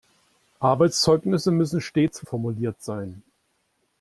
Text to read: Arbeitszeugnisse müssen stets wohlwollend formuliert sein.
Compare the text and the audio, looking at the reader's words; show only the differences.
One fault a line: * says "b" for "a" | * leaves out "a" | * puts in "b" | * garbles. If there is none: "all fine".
* leaves out "wohlwollend"